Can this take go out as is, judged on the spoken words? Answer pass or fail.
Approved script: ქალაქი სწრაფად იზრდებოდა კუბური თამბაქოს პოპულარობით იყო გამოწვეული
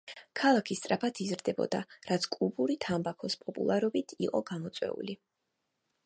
fail